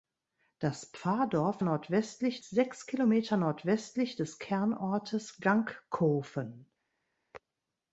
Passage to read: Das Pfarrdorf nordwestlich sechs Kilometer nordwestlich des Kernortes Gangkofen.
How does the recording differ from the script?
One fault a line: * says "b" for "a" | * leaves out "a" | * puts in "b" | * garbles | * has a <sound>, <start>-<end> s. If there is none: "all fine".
all fine